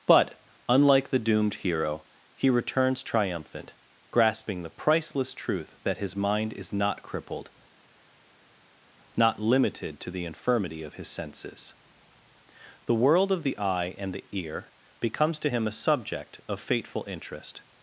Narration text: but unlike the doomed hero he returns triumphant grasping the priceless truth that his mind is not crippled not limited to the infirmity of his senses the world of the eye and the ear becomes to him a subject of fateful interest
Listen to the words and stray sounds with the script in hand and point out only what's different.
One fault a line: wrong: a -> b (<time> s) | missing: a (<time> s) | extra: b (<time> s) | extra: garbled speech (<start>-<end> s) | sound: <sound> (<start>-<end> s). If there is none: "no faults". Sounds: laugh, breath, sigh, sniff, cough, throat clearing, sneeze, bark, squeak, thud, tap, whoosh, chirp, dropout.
no faults